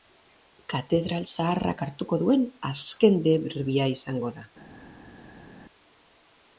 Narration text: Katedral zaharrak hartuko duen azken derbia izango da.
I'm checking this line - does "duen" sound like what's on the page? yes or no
yes